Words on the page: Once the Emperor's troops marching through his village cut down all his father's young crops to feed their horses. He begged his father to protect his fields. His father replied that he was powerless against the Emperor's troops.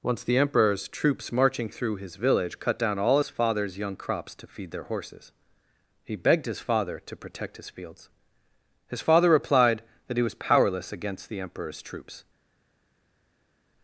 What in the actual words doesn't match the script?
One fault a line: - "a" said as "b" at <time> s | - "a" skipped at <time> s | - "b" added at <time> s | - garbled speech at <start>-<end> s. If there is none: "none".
none